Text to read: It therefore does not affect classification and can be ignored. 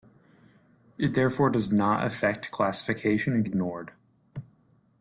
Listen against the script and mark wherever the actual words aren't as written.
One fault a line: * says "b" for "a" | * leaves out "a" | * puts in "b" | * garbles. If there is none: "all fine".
* leaves out "can be"